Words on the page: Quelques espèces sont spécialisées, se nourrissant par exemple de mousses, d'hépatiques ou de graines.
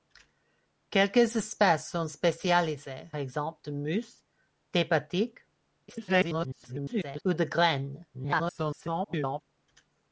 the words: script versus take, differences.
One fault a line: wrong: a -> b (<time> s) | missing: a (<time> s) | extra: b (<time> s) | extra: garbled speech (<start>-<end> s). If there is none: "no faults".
missing: se nourrissant par (3.1 s)
extra: garbled speech (5.9-7.2 s)
extra: garbled speech (8.1-9.4 s)